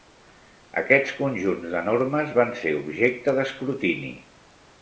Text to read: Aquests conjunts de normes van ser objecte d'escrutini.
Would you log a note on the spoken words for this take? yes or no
no